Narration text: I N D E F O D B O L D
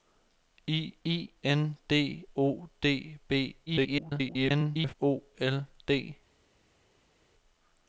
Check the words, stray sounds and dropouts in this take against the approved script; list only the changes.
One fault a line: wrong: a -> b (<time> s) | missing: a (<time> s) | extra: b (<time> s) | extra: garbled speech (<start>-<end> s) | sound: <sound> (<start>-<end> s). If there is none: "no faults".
extra: I (1.0 s)
missing: E F (2.3 s)
extra: garbled speech (3.7-4.9 s)